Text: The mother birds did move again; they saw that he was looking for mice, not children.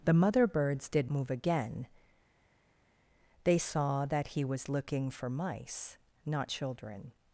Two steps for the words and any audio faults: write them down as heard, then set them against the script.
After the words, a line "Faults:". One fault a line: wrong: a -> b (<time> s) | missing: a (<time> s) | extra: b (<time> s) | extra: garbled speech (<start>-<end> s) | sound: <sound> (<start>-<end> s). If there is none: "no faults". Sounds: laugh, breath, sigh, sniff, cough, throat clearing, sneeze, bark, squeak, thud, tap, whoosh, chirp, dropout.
The mother birds did move again; they saw that he was looking for mice, not children.
Faults:
no faults